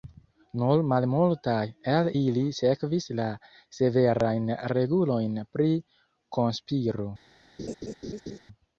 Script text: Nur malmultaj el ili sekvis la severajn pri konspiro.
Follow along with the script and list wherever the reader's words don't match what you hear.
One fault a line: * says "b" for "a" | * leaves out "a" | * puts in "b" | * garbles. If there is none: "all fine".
* puts in "regulojn"